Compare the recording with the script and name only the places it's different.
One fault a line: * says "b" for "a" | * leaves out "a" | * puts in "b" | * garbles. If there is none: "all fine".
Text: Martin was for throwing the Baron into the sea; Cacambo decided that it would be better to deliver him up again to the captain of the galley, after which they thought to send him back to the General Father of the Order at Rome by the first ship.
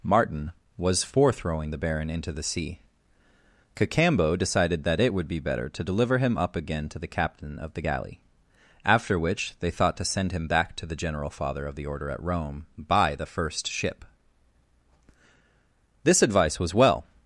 * puts in "This advice was well"